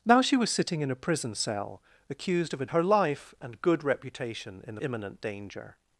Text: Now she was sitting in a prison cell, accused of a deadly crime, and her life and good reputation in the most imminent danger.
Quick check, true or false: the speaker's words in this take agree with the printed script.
false